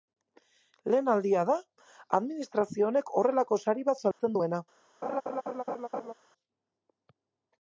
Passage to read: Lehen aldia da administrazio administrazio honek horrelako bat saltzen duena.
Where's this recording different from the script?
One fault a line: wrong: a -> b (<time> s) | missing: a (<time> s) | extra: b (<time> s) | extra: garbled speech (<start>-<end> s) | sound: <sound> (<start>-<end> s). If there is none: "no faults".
missing: administrazio (2.9 s)
extra: sari (3.7 s)
sound: dropout (4.1-4.2 s)
sound: laugh (5.0-6.1 s)